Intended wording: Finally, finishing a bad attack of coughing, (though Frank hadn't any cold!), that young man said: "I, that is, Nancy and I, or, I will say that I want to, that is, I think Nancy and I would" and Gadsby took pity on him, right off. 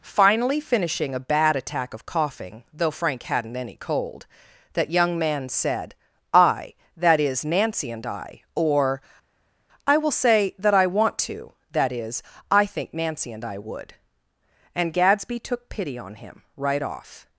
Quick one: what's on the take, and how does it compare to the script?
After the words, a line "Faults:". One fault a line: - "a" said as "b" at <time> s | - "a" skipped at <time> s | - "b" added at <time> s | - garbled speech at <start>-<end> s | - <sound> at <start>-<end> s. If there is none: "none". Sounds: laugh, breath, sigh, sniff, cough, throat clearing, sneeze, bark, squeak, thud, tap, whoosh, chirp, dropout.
Finally, finishing a bad attack of coughing, (though Frank hadn't any cold!), that young man said: "I, that is, Nancy and I, or, I will say that I want to, that is, I think Nancy and I would" and Gadsby took pity on him, right off.
Faults:
none